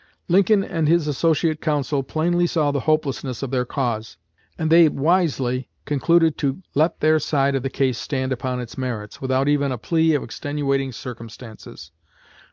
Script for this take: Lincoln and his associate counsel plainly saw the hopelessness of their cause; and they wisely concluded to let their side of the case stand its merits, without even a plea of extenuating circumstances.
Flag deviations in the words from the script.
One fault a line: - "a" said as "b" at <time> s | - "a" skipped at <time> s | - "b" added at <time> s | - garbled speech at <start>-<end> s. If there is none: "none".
- "upon" added at 8.3 s